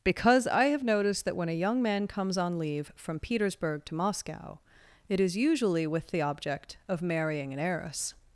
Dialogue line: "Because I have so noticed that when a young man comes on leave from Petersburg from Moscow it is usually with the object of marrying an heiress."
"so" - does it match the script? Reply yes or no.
no